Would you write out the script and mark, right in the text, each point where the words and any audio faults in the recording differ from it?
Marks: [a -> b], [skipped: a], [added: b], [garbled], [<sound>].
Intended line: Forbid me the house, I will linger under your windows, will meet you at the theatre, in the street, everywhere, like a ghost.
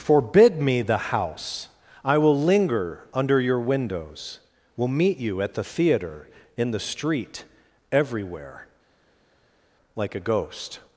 Forbid me the house, I will linger under your windows, will meet you at the theatre, in the street, everywhere, like a ghost.